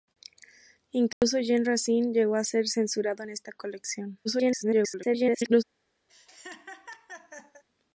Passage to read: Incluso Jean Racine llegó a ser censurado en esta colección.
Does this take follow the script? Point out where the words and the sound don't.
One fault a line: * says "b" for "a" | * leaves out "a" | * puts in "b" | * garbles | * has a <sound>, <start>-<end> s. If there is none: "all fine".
* has a dropout, 1.1-1.2 s
* garbles
* has a laugh, 6.1-7.6 s